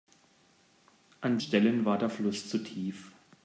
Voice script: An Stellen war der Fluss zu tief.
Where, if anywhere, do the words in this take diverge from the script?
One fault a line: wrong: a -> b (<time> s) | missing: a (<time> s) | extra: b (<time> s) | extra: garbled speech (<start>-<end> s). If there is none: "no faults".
no faults